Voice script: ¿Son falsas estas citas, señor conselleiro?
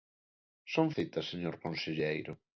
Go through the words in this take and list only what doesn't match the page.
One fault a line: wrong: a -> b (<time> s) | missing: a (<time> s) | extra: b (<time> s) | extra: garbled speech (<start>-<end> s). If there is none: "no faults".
missing: falsas estas (0.9 s)